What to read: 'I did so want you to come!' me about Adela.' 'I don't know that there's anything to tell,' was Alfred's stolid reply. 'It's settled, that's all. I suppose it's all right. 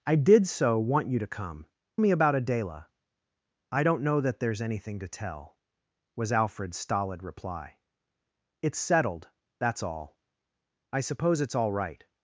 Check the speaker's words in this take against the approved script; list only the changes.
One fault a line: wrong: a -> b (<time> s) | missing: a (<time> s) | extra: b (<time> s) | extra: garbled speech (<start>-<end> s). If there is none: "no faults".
no faults